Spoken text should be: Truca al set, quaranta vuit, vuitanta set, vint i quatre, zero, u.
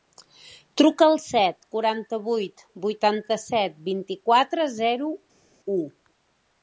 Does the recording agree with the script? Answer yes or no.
yes